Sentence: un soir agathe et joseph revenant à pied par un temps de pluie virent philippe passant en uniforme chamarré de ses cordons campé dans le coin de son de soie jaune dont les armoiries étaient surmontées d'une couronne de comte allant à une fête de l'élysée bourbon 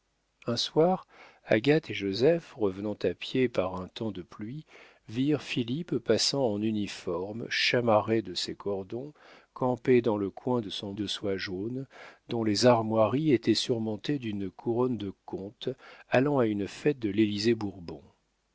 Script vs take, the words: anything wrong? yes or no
no